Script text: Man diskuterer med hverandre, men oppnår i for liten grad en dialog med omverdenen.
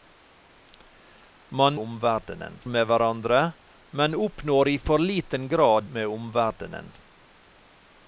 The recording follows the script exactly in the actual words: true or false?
false